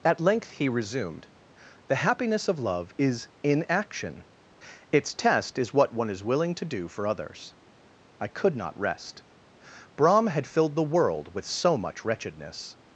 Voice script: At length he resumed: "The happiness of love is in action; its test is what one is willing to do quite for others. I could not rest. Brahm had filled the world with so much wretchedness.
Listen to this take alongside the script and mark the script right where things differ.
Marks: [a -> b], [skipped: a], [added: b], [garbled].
At length he resumed: "The happiness of love is in action; its test is what one is willing to do [skipped: quite] for others. I could not rest. Brahm had filled the world with so much wretchedness.